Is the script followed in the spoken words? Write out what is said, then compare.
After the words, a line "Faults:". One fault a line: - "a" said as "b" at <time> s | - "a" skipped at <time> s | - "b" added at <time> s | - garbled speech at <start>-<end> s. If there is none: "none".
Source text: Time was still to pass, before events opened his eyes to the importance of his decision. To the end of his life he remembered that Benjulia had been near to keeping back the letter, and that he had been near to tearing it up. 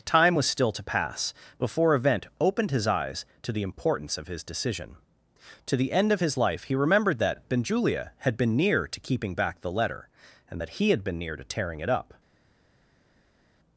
Time was still to pass, before event opened his eyes to the importance of his decision. To the end of his life he remembered that Benjulia had been near to keeping back the letter, and that he had been near to tearing it up.
Faults:
- "events" said as "event" at 1.9 s